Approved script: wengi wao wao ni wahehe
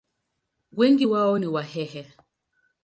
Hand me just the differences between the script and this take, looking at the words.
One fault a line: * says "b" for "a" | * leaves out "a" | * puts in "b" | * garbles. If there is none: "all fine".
* leaves out "wao"